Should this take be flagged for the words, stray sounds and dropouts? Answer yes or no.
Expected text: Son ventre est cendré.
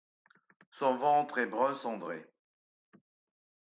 yes